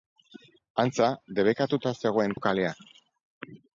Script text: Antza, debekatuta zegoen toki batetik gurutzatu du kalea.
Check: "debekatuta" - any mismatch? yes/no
no